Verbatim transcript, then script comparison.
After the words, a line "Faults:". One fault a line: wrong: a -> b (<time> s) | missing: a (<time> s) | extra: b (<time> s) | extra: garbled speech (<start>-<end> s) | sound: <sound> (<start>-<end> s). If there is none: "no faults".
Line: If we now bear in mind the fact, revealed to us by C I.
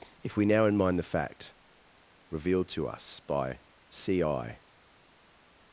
If we now in mind the fact, revealed to us by C I.
Faults:
missing: bear (0.7 s)